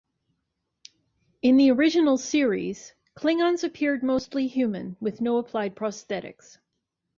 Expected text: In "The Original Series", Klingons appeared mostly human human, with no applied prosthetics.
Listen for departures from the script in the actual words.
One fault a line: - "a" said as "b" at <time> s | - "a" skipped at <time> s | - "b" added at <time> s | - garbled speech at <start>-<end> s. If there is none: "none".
- "human" skipped at 5.0 s